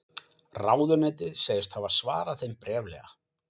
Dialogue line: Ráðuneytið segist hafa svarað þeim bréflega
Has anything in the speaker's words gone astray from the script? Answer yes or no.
no